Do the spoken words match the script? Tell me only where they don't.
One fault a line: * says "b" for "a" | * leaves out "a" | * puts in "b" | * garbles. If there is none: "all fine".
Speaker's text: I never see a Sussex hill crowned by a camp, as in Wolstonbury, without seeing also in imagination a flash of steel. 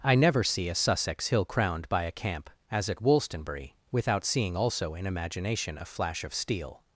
* says "at" for "in"